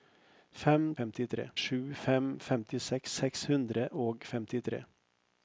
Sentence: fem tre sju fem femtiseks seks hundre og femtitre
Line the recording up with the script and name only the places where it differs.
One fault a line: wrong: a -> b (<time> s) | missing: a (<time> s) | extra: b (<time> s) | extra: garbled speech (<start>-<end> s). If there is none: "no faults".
wrong: tre -> femtitre (1.0 s)